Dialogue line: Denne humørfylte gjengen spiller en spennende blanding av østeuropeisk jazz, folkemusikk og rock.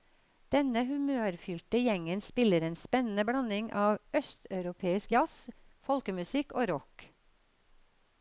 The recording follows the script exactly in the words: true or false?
true